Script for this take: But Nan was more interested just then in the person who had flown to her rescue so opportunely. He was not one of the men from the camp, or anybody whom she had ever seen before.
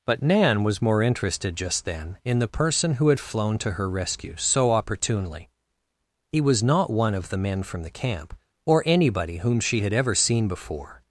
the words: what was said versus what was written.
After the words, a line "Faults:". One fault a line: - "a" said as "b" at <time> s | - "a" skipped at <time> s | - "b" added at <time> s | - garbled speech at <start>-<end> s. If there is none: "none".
But Nan was more interested just then in the person who had flown to her rescue so opportunely. He was not one of the men from the camp, or anybody whom she had ever seen before.
Faults:
none